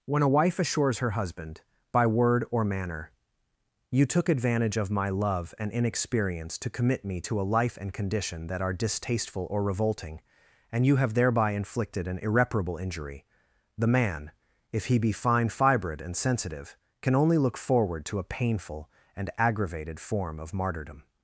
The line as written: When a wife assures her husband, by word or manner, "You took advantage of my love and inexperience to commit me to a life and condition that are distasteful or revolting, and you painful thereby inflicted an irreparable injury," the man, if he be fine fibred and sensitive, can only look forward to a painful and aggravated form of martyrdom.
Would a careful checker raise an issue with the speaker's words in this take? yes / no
yes